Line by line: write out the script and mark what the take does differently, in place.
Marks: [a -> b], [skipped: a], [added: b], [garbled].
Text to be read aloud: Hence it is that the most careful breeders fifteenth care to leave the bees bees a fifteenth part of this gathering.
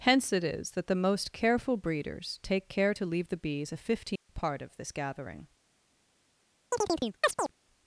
Hence it is that the most careful breeders [fifteenth -> take] care to leave the bees [skipped: bees] a fifteenth part of this gathering.